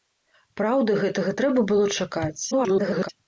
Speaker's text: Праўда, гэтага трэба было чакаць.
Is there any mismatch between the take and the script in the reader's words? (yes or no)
yes